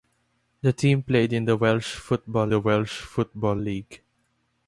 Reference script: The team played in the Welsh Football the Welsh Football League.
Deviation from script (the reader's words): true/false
false